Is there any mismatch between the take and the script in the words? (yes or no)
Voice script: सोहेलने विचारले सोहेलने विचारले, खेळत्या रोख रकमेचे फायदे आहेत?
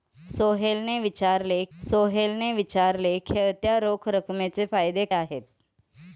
no